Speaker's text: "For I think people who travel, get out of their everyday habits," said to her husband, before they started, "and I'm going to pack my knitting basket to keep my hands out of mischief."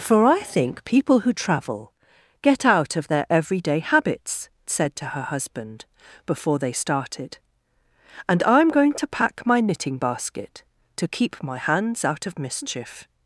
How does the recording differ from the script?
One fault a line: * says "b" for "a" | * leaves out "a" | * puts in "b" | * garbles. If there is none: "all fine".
all fine